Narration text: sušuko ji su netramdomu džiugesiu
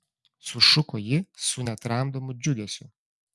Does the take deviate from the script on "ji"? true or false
false